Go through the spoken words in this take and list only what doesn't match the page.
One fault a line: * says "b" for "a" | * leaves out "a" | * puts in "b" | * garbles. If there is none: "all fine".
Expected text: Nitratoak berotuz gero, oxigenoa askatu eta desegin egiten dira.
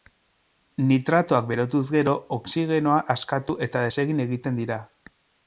all fine